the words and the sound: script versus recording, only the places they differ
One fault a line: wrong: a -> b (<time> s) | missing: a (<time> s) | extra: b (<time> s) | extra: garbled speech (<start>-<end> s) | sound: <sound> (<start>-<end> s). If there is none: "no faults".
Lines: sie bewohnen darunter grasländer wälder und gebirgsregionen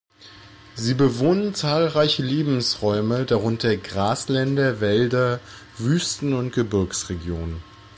extra: zahlreiche lebensräume (1.5 s)
extra: wüsten (5.8 s)